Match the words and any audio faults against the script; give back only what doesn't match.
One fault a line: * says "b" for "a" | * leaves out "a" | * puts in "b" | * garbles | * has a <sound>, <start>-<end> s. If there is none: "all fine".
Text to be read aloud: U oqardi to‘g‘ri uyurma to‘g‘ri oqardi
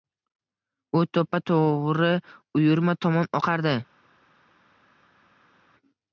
* says "to‘ppa" for "oqardi"
* says "tomon" for "to‘g‘ri"